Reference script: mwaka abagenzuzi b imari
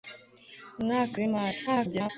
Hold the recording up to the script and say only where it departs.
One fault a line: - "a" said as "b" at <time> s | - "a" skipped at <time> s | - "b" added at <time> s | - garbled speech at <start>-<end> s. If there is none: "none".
- "abagenzuzi" skipped at 1.2 s
- garbled speech at 1.7-2.1 s